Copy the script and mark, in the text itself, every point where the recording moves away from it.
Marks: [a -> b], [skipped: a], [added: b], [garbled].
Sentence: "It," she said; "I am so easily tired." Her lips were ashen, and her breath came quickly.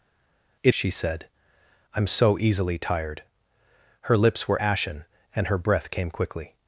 "It," she said; "I am so easily tired." Her lips were ashen, and her breath came quickly.